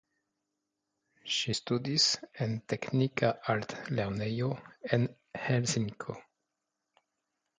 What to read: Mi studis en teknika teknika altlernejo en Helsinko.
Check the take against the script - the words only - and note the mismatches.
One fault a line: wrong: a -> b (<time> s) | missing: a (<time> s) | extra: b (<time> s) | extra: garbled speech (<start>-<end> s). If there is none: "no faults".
wrong: Mi -> Ŝi (1.3 s)
missing: teknika (3.3 s)